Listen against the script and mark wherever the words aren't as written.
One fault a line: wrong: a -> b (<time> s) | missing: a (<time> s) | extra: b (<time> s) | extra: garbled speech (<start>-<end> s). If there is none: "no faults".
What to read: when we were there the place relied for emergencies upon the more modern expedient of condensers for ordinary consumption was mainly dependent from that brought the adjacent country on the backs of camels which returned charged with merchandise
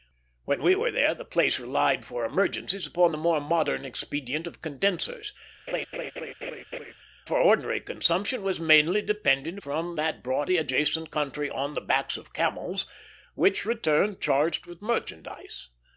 no faults